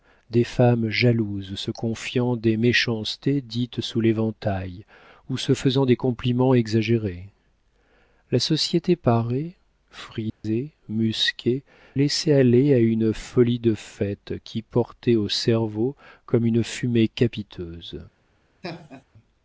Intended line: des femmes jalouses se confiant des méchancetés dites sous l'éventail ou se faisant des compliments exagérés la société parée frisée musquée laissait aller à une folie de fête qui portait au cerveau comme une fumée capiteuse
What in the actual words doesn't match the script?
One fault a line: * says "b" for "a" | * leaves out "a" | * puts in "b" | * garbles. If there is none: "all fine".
all fine